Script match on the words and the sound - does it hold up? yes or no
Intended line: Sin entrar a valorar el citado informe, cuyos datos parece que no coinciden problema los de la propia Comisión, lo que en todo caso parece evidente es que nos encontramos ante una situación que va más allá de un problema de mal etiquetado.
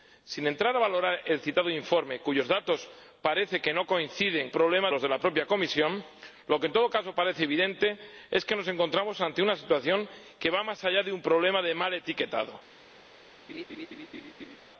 no